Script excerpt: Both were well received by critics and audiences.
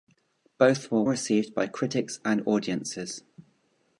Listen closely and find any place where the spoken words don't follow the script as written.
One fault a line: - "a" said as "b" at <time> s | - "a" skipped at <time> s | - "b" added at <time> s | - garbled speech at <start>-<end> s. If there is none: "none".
- "well" skipped at 1.0 s